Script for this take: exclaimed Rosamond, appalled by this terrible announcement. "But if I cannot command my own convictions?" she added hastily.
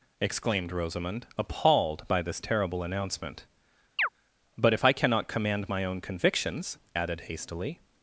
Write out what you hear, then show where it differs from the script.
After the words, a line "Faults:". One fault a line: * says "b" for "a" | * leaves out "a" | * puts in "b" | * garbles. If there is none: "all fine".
exclaimed Rosamond, appalled by this terrible announcement. "But if I cannot command my own convictions?" added hastily.
Faults:
* leaves out "she"